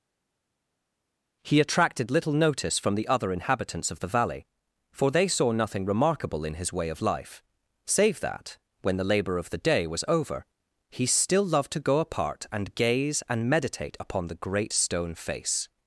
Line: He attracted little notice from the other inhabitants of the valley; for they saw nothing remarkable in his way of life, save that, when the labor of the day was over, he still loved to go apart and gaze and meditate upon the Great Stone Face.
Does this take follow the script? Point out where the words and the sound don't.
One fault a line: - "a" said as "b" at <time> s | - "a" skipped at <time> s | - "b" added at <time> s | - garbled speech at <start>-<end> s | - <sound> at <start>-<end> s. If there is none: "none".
none